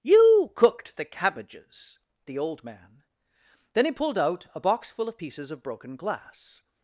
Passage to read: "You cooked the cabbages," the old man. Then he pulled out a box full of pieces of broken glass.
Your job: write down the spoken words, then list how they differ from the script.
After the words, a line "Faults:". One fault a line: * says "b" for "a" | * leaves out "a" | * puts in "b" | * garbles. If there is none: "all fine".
"You cooked the cabbages," the old man. Then he pulled out a box full of pieces of broken glass.
Faults:
all fine